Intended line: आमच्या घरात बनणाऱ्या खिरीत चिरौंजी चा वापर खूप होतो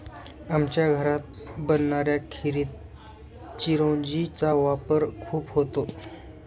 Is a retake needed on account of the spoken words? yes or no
no